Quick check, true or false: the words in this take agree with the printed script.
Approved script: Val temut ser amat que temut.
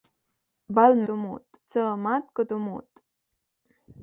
true